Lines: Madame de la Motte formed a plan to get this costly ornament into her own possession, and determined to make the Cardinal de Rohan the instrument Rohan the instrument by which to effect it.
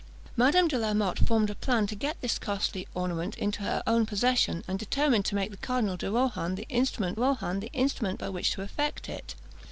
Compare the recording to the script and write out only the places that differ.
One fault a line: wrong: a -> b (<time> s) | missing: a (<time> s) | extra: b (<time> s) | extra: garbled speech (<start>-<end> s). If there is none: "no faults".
no faults